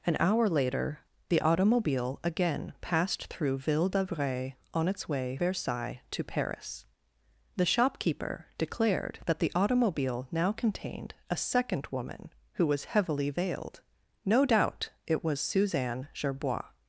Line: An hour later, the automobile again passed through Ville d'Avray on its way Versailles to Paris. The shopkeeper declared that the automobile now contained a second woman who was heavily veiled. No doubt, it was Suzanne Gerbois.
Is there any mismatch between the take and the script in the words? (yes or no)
no